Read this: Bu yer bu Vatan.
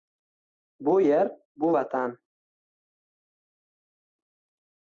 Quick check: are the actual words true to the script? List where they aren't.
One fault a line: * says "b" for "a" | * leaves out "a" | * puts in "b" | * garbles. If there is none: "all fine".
all fine